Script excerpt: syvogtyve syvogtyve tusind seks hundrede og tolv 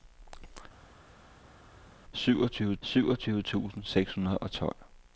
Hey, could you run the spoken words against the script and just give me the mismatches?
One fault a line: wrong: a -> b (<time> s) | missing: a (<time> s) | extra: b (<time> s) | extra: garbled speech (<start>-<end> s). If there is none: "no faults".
no faults